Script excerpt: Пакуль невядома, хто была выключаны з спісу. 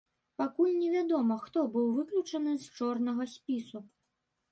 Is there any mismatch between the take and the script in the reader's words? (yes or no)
yes